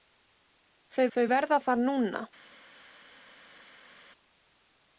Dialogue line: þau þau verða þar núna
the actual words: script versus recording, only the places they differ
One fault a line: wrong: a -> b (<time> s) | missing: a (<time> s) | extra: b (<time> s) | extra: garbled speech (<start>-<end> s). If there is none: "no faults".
no faults